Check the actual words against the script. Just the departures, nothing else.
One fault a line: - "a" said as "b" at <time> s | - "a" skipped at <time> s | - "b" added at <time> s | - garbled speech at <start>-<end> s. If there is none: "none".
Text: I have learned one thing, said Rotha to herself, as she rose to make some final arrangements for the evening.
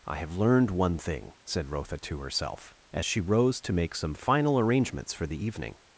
none